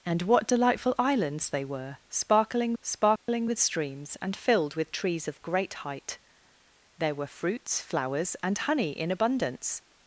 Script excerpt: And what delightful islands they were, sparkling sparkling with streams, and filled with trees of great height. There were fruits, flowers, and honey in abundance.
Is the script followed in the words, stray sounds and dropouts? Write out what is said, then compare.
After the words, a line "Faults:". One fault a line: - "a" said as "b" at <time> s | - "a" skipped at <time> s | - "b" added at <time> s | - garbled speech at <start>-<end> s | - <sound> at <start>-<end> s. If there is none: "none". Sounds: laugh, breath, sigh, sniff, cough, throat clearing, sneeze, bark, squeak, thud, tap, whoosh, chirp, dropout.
And what delightful islands they were, sparkling sparkling with streams, and filled with trees of great height. There were fruits, flowers, and honey in abundance.
Faults:
- dropout at 3.2-3.3 s